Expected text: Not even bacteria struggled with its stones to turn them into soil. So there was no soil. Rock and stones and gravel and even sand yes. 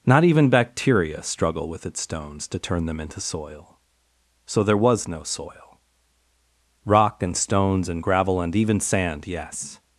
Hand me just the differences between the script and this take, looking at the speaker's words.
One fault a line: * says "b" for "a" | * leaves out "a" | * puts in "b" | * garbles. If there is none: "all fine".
* says "struggle" for "struggled"